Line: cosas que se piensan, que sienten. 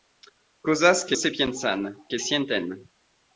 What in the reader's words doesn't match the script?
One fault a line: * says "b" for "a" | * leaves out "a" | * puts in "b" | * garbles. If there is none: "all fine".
all fine